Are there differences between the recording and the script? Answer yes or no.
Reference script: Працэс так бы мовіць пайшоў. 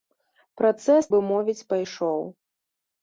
yes